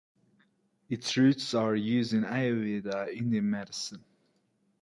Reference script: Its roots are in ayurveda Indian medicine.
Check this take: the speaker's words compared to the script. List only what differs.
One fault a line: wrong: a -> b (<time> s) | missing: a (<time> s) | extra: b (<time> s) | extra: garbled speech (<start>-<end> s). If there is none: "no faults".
extra: used (1.8 s)